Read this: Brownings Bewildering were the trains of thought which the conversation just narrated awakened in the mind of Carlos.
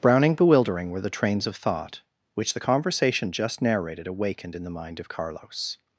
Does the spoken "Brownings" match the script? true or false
false